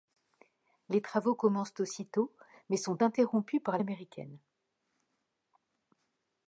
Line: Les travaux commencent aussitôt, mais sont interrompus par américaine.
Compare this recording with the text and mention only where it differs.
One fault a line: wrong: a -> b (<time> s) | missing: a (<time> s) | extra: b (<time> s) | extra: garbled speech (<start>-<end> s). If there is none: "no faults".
no faults